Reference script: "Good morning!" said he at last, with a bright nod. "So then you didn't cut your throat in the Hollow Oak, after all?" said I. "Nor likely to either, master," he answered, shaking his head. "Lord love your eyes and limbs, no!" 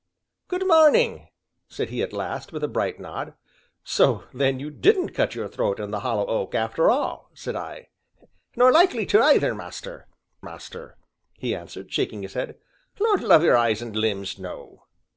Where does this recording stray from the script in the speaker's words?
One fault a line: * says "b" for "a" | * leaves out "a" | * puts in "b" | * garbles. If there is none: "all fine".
* puts in "master"